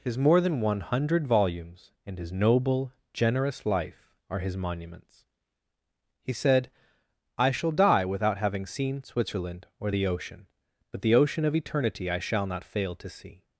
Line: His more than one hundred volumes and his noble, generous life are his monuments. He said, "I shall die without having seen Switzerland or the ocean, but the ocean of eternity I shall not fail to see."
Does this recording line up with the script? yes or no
yes